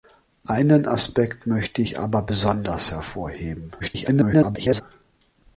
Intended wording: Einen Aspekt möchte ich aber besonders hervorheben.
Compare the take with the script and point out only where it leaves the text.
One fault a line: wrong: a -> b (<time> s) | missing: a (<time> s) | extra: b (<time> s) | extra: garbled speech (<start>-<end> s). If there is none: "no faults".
extra: garbled speech (3.8-4.8 s)